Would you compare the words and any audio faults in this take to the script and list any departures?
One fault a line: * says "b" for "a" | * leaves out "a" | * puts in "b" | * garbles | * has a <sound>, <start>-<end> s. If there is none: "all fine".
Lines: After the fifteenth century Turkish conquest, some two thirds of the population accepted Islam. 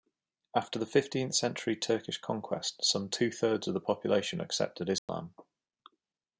* has a dropout, 5.0-5.1 s